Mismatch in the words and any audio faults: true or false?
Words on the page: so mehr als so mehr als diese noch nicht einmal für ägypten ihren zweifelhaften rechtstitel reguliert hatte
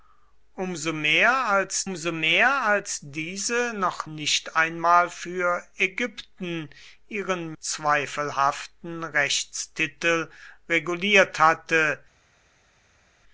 false